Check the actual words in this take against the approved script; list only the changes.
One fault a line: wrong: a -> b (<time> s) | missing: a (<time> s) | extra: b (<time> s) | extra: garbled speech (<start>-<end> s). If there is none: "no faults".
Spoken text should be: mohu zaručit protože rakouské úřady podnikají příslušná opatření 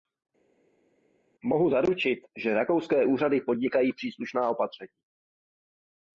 wrong: protože -> že (2.4 s)